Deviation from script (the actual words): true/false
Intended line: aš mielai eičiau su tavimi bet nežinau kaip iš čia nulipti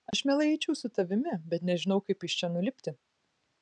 false